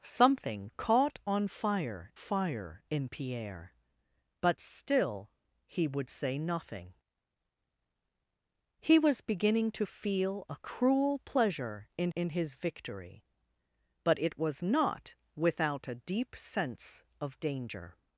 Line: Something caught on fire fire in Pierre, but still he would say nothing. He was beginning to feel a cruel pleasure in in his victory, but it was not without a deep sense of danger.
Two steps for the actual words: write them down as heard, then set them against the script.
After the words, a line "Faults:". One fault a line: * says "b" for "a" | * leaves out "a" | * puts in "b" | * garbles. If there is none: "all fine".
Something caught on fire fire in Pierre, but still he would say nothing. He was beginning to feel a cruel pleasure in in his victory, but it was not without a deep sense of danger.
Faults:
all fine